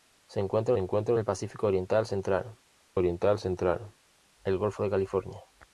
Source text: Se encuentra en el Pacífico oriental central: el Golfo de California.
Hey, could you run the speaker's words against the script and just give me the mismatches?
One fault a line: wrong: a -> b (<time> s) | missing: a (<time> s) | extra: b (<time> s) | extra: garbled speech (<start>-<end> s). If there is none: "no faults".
extra: encuentra (0.8 s)
extra: oriental central (3.0 s)